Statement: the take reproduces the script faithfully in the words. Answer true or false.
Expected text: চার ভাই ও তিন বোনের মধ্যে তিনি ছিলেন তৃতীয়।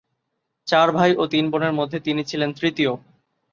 true